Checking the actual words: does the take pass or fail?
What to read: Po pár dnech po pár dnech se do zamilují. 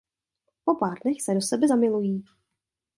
fail